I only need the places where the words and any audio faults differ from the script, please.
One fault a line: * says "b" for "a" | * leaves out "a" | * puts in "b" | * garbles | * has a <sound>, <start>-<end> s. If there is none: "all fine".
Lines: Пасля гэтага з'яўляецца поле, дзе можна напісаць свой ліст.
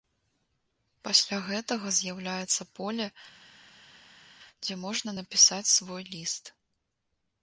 all fine